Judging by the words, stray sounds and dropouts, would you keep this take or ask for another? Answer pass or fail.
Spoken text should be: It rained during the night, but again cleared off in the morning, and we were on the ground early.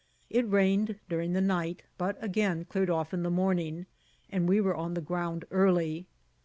pass